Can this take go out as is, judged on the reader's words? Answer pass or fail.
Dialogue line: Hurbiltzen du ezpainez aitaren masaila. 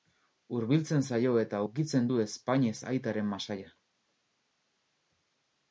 fail